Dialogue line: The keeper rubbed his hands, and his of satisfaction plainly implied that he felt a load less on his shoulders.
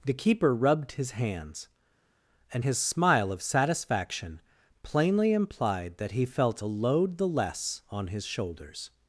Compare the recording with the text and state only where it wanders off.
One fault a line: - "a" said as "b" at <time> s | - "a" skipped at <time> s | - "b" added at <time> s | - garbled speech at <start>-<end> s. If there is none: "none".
- "smile" added at 2.8 s
- "the" added at 7.2 s